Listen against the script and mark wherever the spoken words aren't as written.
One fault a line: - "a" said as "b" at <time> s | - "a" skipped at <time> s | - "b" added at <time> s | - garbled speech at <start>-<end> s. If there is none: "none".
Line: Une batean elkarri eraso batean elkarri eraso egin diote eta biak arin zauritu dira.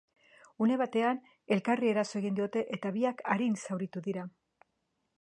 - "batean elkarri eraso" skipped at 2.2 s